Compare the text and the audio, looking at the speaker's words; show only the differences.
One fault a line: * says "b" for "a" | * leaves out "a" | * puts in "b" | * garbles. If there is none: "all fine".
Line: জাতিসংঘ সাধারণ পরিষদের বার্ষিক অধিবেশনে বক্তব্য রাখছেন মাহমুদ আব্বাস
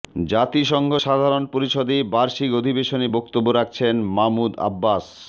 all fine